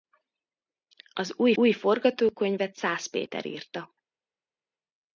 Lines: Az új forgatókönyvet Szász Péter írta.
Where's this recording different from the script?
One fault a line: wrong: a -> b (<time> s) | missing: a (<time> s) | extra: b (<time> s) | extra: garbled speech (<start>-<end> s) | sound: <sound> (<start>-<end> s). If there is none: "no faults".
extra: új (1.5 s)